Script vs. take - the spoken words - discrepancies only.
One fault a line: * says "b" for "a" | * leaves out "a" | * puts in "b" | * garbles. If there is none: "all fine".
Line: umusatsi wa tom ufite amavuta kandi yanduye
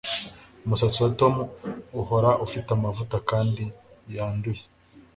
* puts in "uhora"